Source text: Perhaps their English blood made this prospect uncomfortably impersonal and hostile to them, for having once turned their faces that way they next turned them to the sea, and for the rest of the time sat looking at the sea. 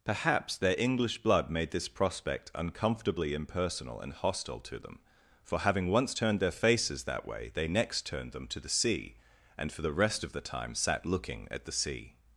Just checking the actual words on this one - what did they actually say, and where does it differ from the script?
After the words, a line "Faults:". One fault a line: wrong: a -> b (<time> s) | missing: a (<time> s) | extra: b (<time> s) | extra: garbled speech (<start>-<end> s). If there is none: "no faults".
Perhaps their English blood made this prospect uncomfortably impersonal and hostile to them, for having once turned their faces that way they next turned them to the sea, and for the rest of the time sat looking at the sea.
Faults:
no faults